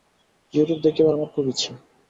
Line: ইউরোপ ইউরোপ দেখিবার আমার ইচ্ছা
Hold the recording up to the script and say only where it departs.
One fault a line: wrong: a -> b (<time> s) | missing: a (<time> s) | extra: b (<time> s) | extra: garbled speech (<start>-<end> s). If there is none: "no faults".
missing: ইউরোপ (0.8 s)
extra: খুব (1.3 s)